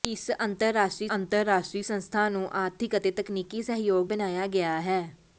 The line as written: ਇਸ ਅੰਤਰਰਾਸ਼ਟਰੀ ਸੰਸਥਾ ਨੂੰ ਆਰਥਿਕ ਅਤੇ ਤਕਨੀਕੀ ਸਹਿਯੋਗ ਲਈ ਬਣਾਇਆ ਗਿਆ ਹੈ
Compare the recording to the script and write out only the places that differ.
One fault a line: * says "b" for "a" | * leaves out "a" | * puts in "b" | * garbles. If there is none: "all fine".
* puts in "ਅੰਤਰਰਾਸ਼ਟਰੀ"
* leaves out "ਲਈ"